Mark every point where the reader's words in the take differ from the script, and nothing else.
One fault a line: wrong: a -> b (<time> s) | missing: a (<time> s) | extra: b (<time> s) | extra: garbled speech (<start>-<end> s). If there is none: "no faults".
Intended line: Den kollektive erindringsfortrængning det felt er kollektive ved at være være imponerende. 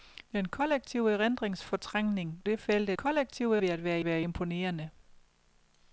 no faults